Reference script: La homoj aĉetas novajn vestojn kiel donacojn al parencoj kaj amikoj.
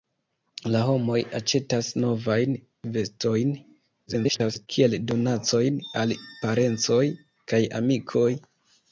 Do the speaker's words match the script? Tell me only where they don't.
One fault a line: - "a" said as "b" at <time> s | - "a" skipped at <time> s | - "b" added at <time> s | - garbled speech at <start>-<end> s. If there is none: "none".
- garbled speech at 4.1-4.7 s